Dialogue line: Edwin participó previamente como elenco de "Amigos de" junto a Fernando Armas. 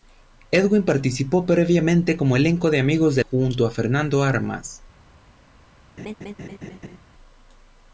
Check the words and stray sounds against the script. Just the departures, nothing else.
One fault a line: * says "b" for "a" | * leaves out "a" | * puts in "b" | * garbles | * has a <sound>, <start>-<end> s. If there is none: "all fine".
* has a laugh, 6.0-7.0 s